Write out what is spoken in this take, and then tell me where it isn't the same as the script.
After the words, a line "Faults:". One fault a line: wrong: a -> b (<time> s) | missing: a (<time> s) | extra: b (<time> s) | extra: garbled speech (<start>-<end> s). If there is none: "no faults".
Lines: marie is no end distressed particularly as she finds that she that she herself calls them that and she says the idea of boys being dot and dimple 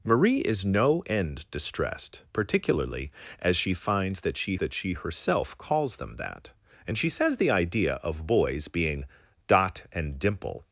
marie is no end distressed particularly as she finds that she that she herself calls them that and she says the idea of boys being dot and dimple
Faults:
no faults